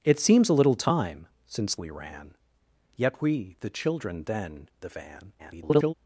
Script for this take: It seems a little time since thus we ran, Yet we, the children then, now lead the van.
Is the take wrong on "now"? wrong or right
wrong